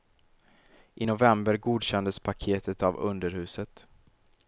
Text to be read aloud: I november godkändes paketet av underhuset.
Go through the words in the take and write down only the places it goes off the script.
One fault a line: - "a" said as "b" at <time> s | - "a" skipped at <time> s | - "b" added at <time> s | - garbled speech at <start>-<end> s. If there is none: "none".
none